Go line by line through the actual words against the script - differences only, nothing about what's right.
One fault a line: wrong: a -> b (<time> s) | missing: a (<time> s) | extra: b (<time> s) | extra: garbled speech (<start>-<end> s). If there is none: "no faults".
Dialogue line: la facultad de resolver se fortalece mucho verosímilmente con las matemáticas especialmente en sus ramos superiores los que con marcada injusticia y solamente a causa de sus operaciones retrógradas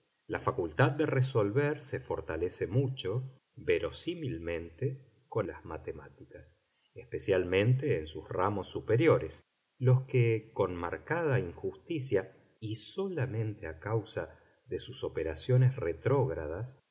no faults